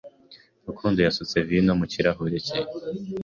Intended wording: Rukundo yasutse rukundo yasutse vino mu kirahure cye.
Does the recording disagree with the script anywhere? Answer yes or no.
yes